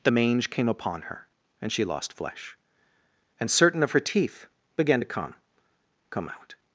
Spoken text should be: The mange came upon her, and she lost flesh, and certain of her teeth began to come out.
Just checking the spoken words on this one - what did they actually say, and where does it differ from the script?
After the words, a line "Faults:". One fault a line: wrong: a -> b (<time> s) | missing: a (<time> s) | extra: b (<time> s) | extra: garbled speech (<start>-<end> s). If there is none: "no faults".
The mange came upon her, and she lost flesh, and certain of her teeth began to come come out.
Faults:
extra: come (6.1 s)